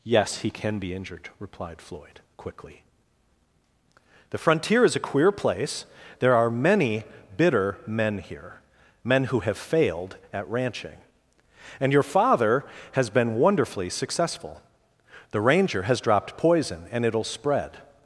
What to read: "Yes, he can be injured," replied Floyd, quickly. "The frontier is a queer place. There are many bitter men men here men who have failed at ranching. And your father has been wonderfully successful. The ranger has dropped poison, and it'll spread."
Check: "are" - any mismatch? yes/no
no